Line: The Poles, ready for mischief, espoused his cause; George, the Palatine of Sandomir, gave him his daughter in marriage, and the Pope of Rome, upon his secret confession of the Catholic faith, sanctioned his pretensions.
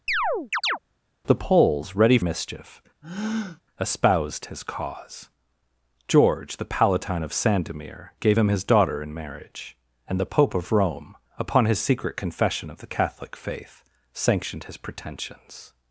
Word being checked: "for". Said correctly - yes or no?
no